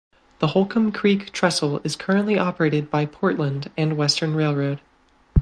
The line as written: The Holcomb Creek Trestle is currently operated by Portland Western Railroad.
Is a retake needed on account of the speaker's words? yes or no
yes